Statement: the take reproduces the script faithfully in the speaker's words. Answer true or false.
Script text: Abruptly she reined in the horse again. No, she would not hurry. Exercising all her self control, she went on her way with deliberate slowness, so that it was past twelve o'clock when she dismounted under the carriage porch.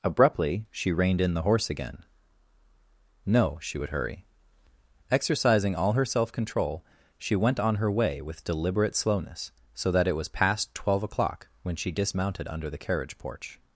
false